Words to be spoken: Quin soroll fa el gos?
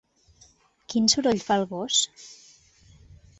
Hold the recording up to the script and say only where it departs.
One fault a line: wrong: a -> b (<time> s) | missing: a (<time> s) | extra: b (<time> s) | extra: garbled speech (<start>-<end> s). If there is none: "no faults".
no faults